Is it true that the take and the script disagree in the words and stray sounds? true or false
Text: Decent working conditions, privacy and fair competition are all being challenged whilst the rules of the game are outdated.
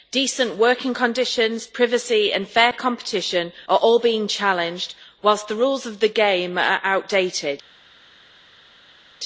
false